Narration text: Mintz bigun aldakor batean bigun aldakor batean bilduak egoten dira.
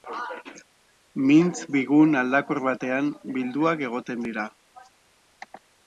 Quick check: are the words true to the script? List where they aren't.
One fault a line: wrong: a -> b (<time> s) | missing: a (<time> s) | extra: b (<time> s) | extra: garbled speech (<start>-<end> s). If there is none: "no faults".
missing: bigun aldakor batean (3.1 s)